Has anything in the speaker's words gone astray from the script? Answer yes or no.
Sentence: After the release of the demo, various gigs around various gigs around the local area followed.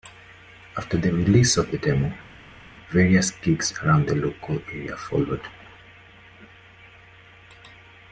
yes